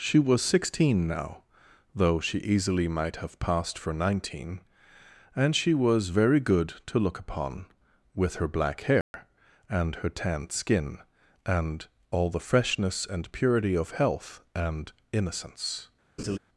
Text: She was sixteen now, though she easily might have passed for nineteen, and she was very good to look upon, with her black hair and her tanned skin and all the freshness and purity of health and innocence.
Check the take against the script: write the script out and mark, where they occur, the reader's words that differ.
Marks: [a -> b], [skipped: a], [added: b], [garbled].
She was sixteen now, though she easily might have passed for nineteen, and she was very good to look upon, with her black hair and her tanned skin and all the freshness and purity of health and innocence.